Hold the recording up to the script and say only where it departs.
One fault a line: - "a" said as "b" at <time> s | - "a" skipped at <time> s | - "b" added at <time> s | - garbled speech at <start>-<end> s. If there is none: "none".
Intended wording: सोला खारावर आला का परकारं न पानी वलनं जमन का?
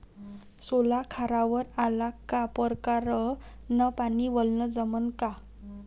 none